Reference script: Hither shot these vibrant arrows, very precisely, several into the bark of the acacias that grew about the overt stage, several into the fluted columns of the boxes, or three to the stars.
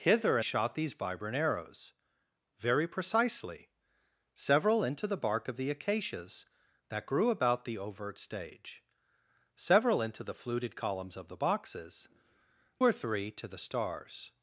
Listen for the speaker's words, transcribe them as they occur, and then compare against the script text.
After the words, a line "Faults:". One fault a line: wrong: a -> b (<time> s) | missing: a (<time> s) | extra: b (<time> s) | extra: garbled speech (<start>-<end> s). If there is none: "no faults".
Hither shot these vibrant arrows, very precisely, several into the bark of the acacias that grew about the overt stage, several into the fluted columns of the boxes, or three to the stars.
Faults:
no faults